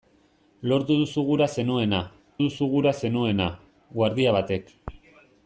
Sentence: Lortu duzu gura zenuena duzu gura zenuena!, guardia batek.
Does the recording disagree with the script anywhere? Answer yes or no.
no